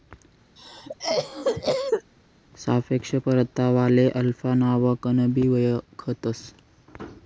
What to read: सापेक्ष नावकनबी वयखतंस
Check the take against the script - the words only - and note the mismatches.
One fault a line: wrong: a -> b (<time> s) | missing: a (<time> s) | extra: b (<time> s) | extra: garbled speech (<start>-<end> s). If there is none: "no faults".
extra: परतावाले अल्फा (3.2 s)